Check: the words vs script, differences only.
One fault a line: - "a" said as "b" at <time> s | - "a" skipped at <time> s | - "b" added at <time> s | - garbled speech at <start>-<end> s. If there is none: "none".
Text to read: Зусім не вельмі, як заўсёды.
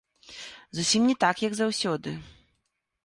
- "вельмі" said as "так" at 1.2 s